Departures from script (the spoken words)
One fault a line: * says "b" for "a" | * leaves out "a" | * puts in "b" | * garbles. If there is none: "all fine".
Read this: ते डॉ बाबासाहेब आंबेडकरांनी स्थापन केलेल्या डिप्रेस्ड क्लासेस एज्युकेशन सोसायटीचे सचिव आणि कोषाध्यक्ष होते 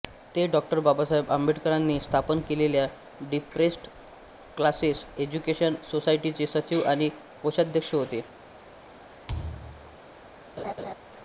all fine